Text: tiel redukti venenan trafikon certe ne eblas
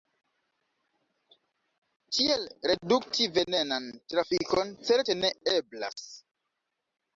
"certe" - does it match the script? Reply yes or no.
yes